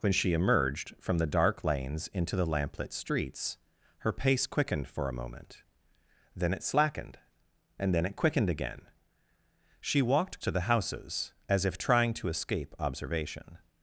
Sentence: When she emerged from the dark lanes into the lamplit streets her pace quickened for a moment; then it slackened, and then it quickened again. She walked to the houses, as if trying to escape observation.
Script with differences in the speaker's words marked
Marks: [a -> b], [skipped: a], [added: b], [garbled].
When she emerged from the dark lanes into the lamplit streets her pace quickened for a moment; then it slackened, and then it quickened again. She walked to the houses, as if trying to escape observation.